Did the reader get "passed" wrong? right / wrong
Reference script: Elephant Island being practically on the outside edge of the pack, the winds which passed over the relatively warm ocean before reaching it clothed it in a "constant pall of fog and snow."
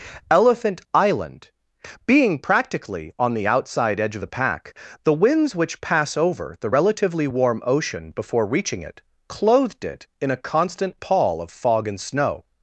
wrong